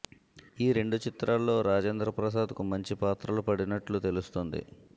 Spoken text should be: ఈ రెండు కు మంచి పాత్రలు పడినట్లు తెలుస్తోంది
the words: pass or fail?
fail